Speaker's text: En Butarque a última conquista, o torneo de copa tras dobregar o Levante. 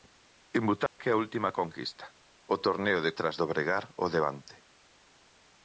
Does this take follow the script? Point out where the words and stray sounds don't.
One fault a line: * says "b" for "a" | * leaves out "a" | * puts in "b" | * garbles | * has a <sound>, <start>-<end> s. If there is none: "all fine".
* has a dropout, 0.9-1.0 s
* leaves out "copa"